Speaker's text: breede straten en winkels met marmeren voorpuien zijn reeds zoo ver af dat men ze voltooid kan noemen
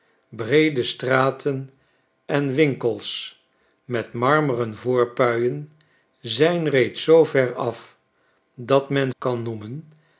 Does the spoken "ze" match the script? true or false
false